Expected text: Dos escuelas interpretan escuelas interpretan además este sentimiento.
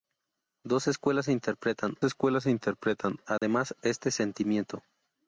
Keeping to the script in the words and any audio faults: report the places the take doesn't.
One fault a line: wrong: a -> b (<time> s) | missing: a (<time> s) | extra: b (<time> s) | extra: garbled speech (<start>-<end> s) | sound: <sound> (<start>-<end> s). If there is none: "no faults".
sound: dropout (3.4-3.4 s)